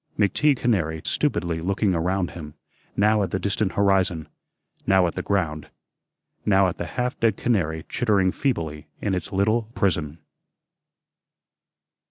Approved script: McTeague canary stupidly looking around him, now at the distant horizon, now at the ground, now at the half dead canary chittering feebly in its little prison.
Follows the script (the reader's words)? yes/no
yes